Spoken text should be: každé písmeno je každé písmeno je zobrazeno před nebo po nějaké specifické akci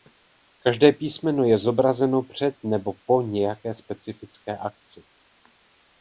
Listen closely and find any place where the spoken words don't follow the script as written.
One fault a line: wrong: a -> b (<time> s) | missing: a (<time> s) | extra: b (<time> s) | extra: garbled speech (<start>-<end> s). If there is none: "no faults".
missing: každé písmeno je (1.6 s)